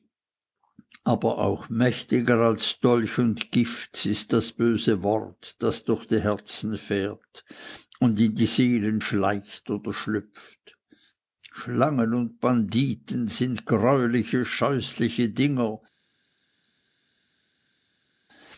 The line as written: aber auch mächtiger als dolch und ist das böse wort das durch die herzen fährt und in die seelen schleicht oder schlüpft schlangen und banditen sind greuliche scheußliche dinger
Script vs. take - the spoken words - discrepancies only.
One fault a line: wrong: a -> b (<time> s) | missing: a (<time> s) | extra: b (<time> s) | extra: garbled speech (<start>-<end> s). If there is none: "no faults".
extra: gift (3.5 s)